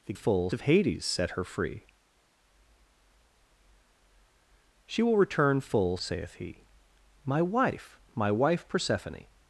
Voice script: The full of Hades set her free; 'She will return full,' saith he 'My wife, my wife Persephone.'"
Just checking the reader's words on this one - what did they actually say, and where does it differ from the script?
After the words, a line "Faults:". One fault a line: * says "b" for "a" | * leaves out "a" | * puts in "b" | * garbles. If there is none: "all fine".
The full of Hades set her free; 'She will return full,' saith he 'My wife, my wife Persephone.'"
Faults:
all fine